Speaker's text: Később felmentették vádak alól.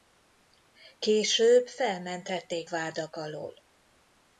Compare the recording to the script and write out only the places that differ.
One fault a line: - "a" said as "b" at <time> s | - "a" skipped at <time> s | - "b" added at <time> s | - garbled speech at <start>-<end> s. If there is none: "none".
none